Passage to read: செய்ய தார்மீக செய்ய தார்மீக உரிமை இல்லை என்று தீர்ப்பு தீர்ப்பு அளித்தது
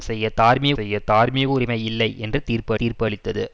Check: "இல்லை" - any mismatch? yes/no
no